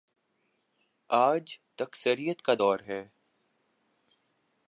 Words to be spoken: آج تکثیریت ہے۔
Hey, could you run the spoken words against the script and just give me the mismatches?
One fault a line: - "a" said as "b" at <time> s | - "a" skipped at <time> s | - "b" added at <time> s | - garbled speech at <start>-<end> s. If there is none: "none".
- "کا دور" added at 2.4 s